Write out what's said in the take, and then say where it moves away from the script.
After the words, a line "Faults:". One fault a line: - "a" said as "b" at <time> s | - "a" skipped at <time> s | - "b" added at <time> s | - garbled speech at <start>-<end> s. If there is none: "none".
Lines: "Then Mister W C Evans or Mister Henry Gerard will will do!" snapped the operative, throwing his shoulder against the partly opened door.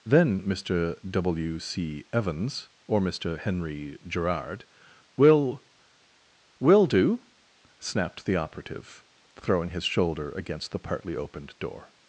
"Then Mister W C Evans or Mister Henry Gerard will will do!" snapped the operative, throwing his shoulder against the partly opened door.
Faults:
none